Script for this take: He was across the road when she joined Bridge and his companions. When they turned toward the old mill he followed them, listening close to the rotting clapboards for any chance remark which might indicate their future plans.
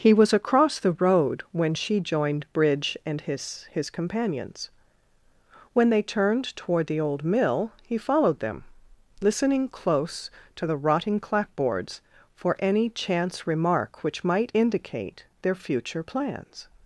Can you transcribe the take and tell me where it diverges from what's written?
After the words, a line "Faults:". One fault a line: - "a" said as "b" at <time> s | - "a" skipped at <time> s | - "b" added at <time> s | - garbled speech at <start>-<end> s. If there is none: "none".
He was across the road when she joined Bridge and his his companions. When they turned toward the old mill he followed them, listening close to the rotting clapboards for any chance remark which might indicate their future plans.
Faults:
- "his" added at 3.7 s